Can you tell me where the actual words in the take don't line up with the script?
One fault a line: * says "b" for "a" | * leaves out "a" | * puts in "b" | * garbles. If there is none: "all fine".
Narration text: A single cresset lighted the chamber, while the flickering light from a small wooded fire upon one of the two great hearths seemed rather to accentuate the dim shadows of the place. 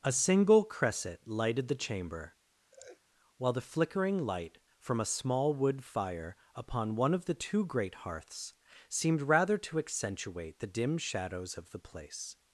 * says "wood" for "wooded"